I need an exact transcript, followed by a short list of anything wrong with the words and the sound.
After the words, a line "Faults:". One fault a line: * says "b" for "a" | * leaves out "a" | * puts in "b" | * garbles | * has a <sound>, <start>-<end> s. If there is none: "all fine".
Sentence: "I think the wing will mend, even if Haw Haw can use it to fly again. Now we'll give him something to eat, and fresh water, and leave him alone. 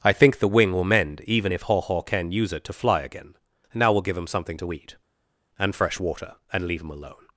"I think the wing will mend, even if Haw Haw can use it to fly again. Now we'll give him something to eat, and fresh water, and leave him alone.
Faults:
all fine